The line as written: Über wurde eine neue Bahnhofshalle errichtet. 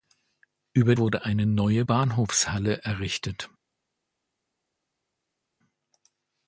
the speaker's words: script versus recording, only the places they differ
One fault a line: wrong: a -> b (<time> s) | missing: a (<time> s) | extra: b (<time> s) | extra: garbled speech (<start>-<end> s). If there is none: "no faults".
no faults